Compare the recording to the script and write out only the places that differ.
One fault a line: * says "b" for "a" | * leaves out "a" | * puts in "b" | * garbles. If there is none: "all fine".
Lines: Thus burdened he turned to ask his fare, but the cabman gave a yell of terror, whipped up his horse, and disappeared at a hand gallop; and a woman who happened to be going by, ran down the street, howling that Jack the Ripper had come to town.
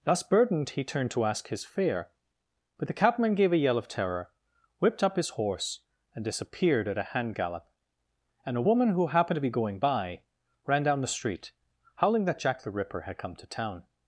all fine